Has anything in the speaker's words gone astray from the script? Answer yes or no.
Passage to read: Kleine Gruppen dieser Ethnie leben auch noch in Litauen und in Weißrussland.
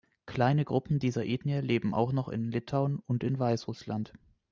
no